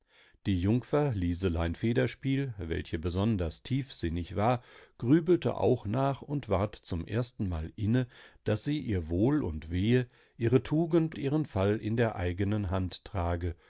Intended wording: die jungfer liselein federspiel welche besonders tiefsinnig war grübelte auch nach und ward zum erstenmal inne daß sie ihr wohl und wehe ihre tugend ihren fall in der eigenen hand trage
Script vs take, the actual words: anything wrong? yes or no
no